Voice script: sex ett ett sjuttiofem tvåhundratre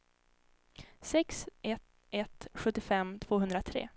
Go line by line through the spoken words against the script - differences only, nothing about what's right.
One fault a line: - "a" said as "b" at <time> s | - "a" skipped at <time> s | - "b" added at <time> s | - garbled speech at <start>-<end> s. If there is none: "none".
none